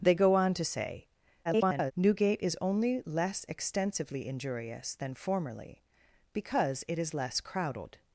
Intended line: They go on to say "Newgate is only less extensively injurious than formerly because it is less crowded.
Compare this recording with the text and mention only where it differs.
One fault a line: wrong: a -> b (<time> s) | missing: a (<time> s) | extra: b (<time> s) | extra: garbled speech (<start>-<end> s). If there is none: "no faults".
extra: garbled speech (1.4-1.9 s)